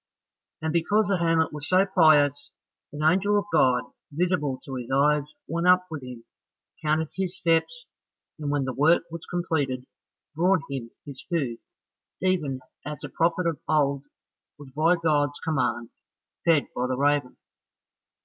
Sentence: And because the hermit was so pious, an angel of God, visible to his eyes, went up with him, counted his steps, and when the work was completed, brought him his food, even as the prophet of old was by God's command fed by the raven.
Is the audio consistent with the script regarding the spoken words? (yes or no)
yes